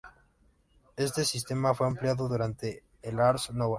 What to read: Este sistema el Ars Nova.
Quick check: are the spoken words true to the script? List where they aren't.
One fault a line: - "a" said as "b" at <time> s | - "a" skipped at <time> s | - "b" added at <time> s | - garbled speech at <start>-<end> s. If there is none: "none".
- "fue ampliado durante" added at 1.8 s